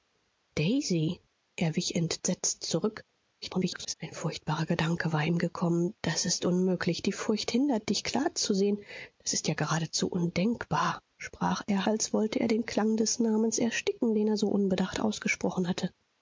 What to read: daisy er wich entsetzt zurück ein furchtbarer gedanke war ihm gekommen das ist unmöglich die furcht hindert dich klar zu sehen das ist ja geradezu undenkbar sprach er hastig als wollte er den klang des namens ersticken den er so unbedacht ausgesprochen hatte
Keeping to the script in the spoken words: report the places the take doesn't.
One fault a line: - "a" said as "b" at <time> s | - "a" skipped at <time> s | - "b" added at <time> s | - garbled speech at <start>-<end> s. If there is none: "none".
- garbled speech at 3.4-3.9 s
- "hastig" skipped at 11.9 s